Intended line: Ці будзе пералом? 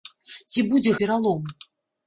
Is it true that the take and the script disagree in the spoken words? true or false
false